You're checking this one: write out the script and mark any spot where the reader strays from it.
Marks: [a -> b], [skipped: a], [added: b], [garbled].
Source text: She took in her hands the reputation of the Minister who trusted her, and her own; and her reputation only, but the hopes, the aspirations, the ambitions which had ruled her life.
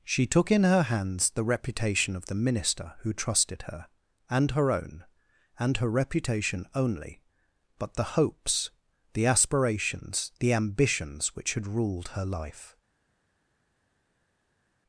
She took in her hands the reputation of the Minister who trusted her, and her own; and her reputation only, but the hopes, the aspirations, the ambitions which had ruled her life.